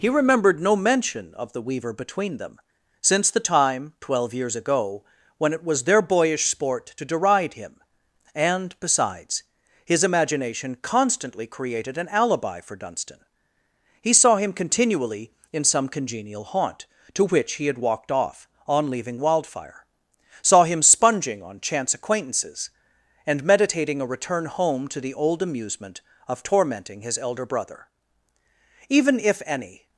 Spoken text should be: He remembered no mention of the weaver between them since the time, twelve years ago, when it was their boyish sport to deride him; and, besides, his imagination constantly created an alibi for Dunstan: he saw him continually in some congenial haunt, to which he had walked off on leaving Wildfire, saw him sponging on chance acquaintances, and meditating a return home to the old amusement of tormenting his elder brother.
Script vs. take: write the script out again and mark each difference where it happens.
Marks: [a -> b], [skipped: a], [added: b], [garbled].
He remembered no mention of the weaver between them since the time, twelve years ago, when it was their boyish sport to deride him; and, besides, his imagination constantly created an alibi for Dunstan: he saw him continually in some congenial haunt, to which he had walked off on leaving Wildfire, saw him sponging on chance acquaintances, and meditating a return home to the old amusement of tormenting his elder brother. [added: Even if any]